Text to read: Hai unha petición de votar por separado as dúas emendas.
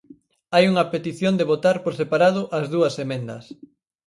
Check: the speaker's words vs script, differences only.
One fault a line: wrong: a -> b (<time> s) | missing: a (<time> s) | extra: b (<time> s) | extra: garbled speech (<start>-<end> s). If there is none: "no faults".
no faults